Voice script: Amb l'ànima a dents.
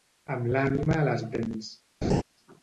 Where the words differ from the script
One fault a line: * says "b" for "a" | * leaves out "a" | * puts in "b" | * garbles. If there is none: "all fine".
* puts in "les"